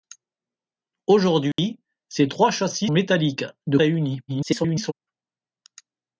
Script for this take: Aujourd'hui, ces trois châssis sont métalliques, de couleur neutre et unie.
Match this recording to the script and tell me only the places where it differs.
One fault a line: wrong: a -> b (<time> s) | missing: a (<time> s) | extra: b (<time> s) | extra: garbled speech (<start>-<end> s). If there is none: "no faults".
missing: sont (2.9 s)
missing: couleur neutre (3.8 s)
extra: garbled speech (4.3-4.9 s)